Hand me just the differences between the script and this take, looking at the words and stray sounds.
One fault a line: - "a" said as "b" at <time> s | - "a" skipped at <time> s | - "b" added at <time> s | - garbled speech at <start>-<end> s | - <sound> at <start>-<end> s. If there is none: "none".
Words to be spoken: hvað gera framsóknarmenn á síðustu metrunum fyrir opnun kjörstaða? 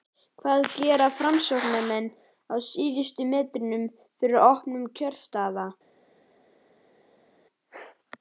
none